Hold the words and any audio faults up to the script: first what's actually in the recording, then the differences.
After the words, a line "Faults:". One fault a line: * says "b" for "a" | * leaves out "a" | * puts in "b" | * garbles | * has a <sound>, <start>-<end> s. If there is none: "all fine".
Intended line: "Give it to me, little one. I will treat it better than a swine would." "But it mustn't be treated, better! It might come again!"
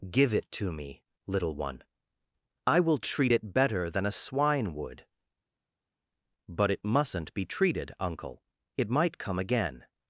"Give it to me, little one. I will treat it better than a swine would." "But it mustn't be treated, uncle! It might come again!"
Faults:
* says "uncle" for "better"